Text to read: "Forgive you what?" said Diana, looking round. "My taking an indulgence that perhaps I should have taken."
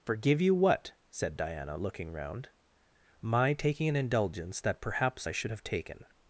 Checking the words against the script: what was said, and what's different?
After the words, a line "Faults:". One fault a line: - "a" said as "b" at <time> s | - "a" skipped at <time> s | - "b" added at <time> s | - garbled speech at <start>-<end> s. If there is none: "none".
"Forgive you what?" said Diana, looking round. "My taking an indulgence that perhaps I should have taken."
Faults:
none